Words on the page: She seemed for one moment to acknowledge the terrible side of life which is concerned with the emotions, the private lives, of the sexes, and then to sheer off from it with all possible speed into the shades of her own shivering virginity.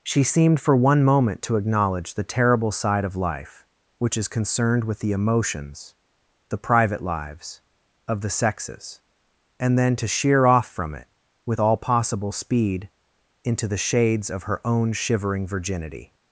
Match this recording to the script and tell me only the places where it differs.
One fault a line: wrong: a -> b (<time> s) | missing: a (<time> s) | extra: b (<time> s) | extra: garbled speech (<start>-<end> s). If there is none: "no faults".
no faults